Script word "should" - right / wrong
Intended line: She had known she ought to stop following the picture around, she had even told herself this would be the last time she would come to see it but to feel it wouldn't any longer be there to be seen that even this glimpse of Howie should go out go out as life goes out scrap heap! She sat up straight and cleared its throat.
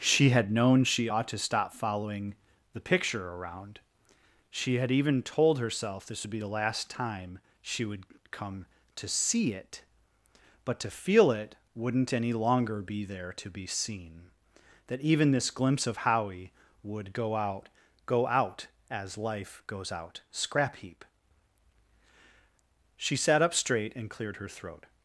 wrong